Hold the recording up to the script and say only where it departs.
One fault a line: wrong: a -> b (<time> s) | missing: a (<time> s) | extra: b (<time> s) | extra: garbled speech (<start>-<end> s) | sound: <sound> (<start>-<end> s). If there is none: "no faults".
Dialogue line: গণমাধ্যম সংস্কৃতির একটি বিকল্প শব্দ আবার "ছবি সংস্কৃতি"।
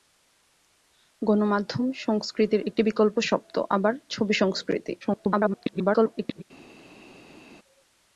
extra: garbled speech (5.0-6.4 s)